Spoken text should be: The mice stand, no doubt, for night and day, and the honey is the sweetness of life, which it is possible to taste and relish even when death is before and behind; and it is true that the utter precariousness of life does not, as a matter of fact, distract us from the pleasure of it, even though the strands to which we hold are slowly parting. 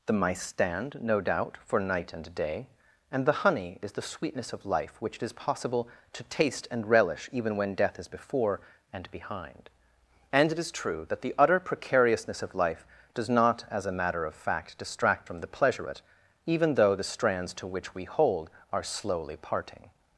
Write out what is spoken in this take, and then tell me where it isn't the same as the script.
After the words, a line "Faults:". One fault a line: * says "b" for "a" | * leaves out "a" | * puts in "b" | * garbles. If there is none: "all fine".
The mice stand, no doubt, for night and day, and the honey is the sweetness of life, which it is possible to taste and relish even when death is before and behind; and it is true that the utter precariousness of life does not, as a matter of fact, distract from the pleasure it, even though the strands to which we hold are slowly parting.
Faults:
* leaves out "us"
* leaves out "of"